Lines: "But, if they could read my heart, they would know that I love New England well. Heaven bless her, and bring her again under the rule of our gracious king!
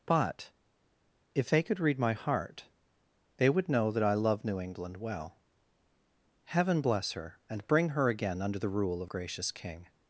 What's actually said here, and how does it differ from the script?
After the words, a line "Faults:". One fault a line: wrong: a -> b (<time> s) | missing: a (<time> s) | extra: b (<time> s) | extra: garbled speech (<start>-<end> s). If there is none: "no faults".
"But, if they could read my heart, they would know that I love New England well. Heaven bless her, and bring her again under the rule of gracious king!
Faults:
missing: our (9.1 s)